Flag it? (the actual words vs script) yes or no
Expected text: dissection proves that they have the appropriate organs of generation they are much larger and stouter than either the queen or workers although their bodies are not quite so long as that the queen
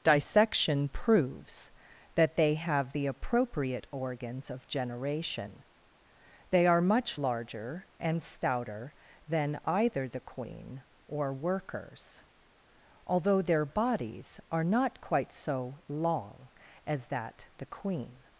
no